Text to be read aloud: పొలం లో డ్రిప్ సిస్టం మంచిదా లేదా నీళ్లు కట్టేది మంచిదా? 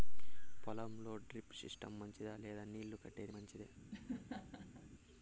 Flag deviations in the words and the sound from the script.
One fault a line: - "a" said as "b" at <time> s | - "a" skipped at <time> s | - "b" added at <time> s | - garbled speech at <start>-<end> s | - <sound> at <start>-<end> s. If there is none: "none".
- laugh at 3.9-4.9 s